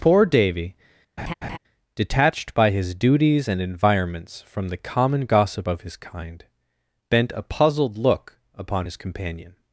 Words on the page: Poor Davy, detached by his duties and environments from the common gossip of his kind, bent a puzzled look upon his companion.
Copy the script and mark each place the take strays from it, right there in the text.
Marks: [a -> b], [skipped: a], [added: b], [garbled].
Poor Davy, detached by his duties and environments from the common gossip of his kind, bent a puzzled look upon his companion.